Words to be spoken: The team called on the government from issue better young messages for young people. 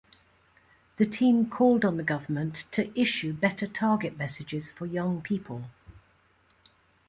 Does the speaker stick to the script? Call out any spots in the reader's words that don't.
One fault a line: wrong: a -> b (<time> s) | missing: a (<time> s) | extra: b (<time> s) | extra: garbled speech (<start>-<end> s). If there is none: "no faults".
wrong: from -> to (2.7 s)
wrong: young -> target (3.7 s)